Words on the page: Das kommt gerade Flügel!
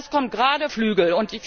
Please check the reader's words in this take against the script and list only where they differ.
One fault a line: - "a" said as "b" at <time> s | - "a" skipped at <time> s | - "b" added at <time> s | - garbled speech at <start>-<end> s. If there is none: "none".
none